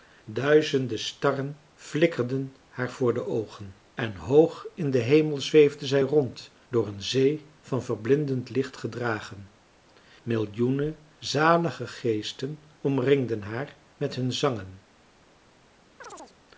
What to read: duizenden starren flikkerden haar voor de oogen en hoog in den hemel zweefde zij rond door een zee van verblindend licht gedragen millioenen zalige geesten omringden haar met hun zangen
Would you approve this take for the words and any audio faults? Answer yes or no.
no